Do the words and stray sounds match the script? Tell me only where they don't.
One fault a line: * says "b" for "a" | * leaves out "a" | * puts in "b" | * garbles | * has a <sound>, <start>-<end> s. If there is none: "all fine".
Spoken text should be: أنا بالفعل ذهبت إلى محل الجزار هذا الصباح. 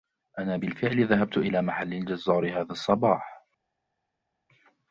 all fine